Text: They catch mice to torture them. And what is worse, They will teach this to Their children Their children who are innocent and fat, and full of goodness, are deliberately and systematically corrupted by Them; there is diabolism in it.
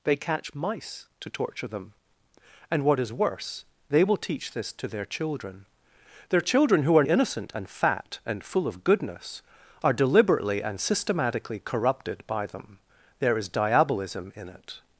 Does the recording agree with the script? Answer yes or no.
yes